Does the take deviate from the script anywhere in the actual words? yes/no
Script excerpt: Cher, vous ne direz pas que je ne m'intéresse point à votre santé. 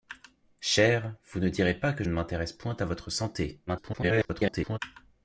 yes